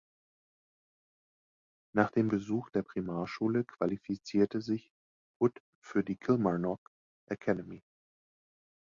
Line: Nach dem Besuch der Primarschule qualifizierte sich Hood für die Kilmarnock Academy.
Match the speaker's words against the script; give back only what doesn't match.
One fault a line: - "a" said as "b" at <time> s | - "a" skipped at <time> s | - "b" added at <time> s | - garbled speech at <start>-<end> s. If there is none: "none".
none